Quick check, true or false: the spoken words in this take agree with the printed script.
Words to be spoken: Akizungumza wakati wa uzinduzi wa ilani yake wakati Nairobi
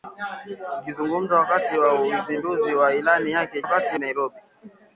true